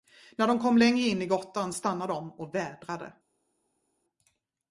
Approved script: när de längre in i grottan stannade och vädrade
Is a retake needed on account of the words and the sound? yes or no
yes